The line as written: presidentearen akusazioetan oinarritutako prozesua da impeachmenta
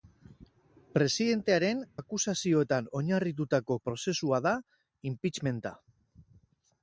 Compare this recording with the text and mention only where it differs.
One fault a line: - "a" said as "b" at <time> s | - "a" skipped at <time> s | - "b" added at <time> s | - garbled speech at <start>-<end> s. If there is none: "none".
none